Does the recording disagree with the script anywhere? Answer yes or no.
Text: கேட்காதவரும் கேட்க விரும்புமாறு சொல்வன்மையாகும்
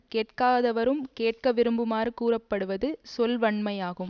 yes